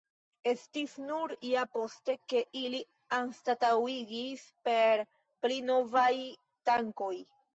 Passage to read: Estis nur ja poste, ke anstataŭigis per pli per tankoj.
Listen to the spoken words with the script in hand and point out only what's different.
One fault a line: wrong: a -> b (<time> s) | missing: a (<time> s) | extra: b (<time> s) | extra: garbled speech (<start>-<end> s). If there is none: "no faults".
extra: ili (2.6 s)
wrong: per -> novaj (5.7 s)